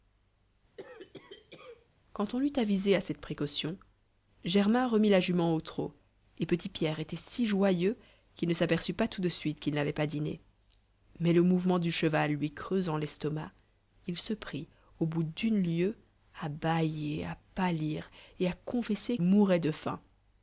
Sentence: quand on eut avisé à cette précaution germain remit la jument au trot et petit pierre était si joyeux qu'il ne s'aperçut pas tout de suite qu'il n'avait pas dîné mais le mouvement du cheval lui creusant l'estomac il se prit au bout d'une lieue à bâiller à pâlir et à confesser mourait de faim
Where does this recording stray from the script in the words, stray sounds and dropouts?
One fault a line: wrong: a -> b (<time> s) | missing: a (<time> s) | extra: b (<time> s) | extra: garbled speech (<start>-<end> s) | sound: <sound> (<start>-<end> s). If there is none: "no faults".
sound: cough (0.8-1.9 s)